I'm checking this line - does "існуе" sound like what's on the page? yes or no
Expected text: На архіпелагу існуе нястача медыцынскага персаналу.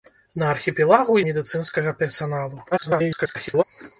no